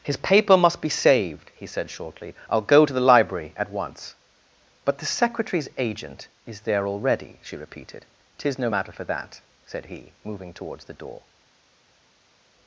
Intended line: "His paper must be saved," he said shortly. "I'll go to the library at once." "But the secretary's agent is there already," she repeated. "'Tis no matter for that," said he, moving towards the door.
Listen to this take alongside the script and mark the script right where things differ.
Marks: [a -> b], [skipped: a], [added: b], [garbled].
"His paper must be saved," he said shortly. "I'll go to the library at once." "But the secretary's agent is there already," she repeated. "'Tis no matter for that," said he, moving towards the door.